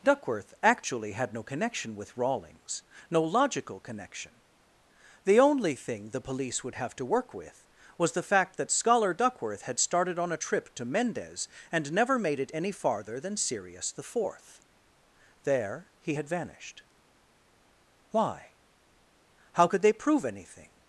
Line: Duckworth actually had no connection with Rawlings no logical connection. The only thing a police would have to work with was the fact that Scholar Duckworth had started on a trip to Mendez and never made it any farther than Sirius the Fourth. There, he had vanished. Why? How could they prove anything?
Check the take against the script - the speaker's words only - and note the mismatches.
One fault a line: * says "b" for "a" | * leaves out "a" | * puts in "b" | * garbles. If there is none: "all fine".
* says "the" for "a"